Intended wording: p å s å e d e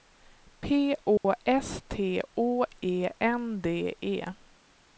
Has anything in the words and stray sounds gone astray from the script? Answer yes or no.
yes